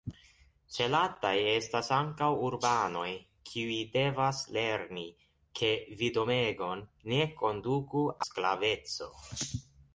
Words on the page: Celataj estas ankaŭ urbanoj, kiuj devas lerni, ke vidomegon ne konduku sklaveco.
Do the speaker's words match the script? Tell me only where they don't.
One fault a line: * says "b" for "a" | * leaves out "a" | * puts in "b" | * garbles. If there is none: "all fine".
all fine